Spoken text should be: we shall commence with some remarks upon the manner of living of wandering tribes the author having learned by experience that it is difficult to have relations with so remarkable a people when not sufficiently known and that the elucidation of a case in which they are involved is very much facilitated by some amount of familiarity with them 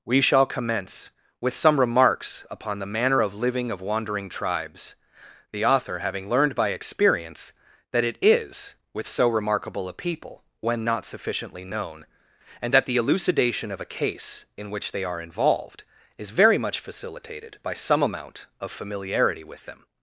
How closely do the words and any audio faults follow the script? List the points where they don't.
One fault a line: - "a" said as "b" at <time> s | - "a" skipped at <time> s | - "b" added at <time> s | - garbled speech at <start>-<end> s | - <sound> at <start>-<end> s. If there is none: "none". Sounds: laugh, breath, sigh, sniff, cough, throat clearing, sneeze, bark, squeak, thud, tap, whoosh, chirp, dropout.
- "difficult to have relations" skipped at 8.7 s